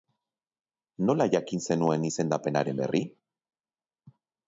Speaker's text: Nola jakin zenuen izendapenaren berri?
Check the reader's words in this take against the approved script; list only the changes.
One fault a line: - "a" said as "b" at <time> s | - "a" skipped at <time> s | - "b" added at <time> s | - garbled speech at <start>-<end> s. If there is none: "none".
none